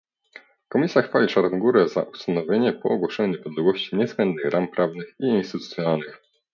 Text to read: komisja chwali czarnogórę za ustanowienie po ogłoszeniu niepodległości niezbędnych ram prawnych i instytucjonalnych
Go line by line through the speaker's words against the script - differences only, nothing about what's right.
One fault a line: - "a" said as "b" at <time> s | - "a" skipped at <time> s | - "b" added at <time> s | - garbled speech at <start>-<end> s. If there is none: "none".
none